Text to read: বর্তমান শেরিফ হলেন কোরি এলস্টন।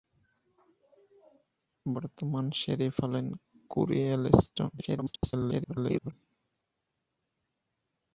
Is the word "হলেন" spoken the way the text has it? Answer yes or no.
yes